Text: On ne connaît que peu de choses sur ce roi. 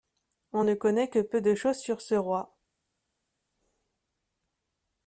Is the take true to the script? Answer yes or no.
yes